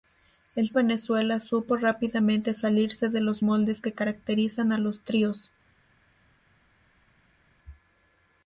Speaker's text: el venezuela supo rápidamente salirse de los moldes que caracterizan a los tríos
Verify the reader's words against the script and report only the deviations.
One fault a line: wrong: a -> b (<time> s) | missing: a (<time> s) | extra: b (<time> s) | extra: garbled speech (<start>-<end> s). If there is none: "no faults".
no faults